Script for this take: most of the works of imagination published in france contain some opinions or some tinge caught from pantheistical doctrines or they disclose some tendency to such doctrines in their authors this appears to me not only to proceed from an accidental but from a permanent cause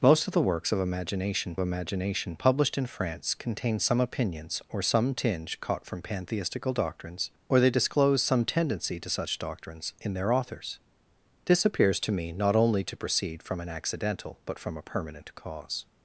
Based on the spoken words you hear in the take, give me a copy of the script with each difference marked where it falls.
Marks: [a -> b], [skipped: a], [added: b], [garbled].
most of the works of imagination [added: imagination] published in france contain some opinions or some tinge caught from pantheistical doctrines or they disclose some tendency to such doctrines in their authors this appears to me not only to proceed from an accidental but from a permanent cause